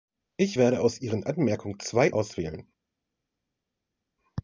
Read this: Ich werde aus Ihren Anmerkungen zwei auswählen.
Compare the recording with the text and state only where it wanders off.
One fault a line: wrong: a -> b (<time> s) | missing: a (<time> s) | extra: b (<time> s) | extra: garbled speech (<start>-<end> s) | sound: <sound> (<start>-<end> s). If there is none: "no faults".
no faults